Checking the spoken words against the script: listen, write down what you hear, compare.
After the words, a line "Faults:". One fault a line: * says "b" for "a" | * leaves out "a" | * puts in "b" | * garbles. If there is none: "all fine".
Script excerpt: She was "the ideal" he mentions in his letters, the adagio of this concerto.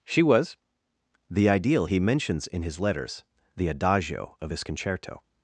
She was "the ideal" he mentions in his letters, the adagio of his concerto.
Faults:
* says "his" for "this"